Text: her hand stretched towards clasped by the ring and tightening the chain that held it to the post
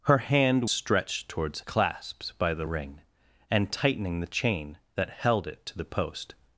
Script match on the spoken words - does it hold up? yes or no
yes